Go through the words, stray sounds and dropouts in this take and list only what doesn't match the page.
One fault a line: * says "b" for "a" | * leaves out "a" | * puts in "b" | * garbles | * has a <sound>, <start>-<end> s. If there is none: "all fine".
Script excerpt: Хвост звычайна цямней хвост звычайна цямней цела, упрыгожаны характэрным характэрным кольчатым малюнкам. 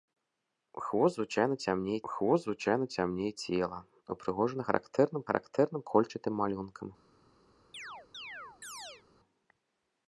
* has a chirp, 7.7-9.0 s